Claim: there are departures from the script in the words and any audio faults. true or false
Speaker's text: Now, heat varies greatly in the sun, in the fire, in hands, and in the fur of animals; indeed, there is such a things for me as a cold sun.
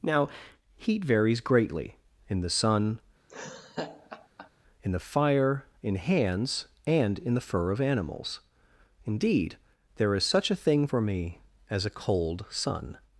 true